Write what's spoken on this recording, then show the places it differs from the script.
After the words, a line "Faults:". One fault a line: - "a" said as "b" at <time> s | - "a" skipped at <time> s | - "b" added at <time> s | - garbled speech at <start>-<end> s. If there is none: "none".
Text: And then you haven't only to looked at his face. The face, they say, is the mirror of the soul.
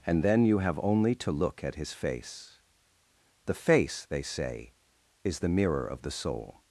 And then you have only to look at his face. The face, they say, is the mirror of the soul.
Faults:
- "haven't" said as "have" at 0.6 s
- "looked" said as "look" at 1.3 s